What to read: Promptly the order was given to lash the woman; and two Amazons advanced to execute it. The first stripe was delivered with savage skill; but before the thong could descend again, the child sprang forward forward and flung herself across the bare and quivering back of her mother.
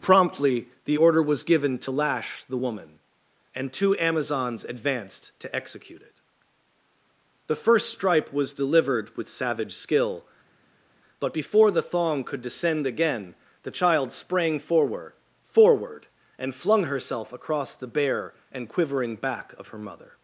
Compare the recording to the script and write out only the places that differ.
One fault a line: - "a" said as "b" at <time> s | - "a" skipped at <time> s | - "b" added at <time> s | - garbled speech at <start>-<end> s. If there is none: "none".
none